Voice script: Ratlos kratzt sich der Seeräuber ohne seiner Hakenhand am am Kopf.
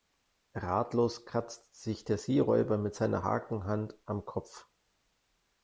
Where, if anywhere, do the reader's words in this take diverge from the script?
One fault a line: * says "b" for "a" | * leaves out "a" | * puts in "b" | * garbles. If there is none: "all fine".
* says "mit" for "ohne"
* leaves out "am"